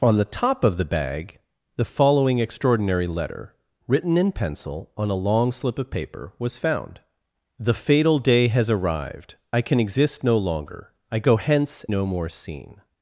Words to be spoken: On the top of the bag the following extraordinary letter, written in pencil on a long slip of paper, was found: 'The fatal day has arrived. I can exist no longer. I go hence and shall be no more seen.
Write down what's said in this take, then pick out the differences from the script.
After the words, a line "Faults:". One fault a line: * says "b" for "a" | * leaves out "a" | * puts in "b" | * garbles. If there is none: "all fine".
On the top of the bag the following extraordinary letter, written in pencil on a long slip of paper, was found: 'The fatal day has arrived. I can exist no longer. I go hence no more seen.
Faults:
* leaves out "and shall be"